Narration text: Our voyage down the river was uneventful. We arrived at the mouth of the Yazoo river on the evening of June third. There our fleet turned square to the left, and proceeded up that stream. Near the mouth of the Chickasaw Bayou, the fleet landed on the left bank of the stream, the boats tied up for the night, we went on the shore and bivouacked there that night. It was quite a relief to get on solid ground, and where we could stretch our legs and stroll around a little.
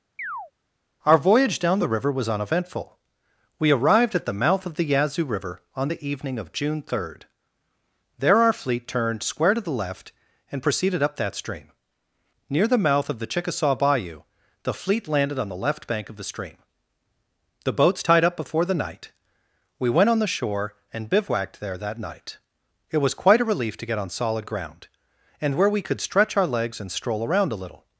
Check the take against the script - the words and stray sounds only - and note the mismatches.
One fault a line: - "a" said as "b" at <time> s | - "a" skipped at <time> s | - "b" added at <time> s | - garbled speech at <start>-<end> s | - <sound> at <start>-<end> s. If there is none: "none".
- chirp at 0.2-0.5 s
- "for" said as "before" at 18.4 s